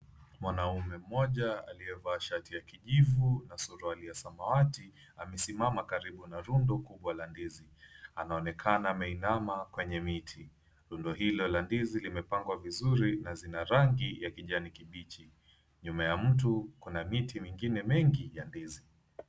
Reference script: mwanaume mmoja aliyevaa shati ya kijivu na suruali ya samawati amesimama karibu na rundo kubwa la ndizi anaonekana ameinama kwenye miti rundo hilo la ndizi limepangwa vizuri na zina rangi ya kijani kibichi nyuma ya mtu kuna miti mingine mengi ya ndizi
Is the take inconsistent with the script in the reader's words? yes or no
no